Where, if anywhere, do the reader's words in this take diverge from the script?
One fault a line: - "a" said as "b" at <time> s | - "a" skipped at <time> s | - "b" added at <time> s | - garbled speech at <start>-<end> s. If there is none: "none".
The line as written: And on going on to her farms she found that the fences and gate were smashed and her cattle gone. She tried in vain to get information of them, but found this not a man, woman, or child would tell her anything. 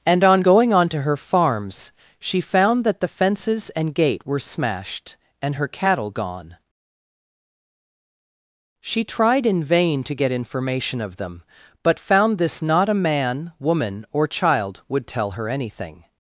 none